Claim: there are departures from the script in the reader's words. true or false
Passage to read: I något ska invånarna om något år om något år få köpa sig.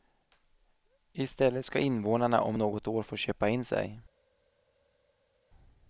true